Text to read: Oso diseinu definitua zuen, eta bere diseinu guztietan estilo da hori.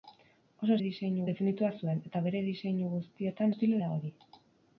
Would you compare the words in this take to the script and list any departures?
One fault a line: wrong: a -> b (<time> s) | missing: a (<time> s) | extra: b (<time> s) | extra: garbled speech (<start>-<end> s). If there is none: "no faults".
no faults